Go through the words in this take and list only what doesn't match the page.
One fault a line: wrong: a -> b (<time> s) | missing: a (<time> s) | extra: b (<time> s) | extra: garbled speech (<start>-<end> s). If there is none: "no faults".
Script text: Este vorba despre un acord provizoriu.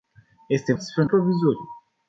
missing: vorba (0.7 s)
missing: acord (1.1 s)